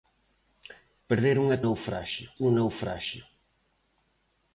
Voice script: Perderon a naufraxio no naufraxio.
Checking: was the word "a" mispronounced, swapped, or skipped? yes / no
no